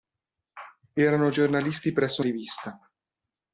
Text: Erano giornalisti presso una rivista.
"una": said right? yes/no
no